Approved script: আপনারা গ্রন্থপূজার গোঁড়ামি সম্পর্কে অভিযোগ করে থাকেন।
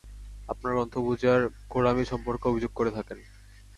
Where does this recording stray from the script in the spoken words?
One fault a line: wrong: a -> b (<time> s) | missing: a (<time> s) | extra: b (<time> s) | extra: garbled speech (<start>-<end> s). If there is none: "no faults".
no faults